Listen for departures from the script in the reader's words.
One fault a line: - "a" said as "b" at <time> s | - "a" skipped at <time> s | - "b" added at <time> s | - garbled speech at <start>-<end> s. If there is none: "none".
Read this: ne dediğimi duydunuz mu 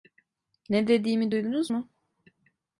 none